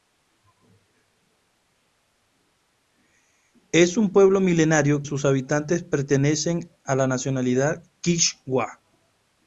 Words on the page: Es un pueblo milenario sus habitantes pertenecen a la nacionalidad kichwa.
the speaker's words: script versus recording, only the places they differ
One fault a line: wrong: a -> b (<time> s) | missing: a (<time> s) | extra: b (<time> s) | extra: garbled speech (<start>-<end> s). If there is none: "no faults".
no faults